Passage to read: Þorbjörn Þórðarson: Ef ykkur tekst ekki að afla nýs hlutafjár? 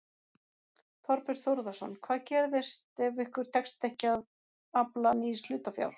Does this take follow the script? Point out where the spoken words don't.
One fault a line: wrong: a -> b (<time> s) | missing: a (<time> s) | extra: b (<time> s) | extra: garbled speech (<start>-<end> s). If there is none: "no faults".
extra: Hvað gerist (2.1 s)